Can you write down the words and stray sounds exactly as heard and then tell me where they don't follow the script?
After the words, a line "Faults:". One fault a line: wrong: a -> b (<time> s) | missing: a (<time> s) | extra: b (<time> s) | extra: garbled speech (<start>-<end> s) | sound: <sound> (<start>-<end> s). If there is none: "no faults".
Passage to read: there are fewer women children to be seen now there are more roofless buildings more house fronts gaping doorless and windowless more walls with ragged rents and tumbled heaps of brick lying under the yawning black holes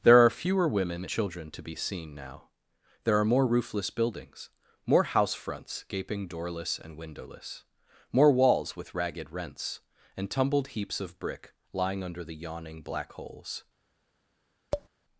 there are fewer women children to be seen now there are more roofless buildings more house fronts gaping doorless and windowless more walls with ragged rents and tumbled heaps of brick lying under the yawning black holes
Faults:
sound: tap (14.7-14.9 s)